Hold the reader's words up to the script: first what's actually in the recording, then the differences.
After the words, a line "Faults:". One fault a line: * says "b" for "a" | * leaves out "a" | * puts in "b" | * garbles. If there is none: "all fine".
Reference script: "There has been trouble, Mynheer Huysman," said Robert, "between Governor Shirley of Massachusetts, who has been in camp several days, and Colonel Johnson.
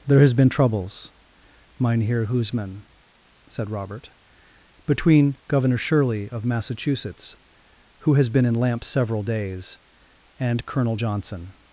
"There has been troubles, Mynheer Huysman," said Robert, "between Governor Shirley of Massachusetts, who has been in lamp several days, and Colonel Johnson.
Faults:
* says "troubles" for "trouble"
* says "lamp" for "camp"